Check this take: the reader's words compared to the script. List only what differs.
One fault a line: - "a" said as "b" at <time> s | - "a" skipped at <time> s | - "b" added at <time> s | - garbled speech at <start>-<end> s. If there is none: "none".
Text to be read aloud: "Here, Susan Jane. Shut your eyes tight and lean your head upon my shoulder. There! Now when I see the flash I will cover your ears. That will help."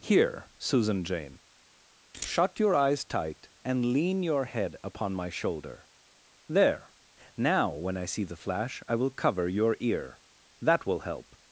- "ears" said as "ear" at 9.8 s